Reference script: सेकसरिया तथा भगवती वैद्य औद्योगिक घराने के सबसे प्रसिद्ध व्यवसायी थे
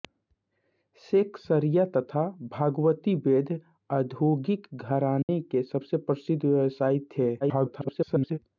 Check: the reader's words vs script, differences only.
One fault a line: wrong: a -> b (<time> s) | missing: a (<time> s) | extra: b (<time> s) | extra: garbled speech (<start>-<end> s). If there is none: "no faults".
extra: garbled speech (7.4-8.4 s)